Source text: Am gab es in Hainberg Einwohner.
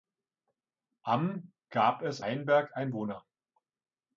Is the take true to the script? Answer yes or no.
no